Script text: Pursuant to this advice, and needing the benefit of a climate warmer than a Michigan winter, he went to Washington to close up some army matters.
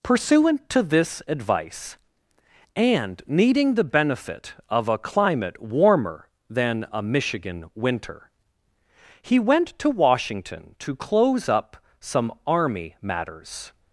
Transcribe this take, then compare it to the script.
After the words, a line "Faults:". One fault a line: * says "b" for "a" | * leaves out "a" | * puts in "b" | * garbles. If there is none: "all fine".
Pursuant to this advice, and needing the benefit of a climate warmer than a Michigan winter, he went to Washington to close up some army matters.
Faults:
all fine